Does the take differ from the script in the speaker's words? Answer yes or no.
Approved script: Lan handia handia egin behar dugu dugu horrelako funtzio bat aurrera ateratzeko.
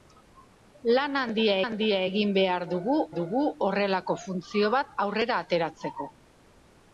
no